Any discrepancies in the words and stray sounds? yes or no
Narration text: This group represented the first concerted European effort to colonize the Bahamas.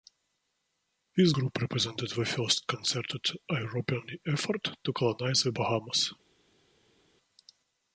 no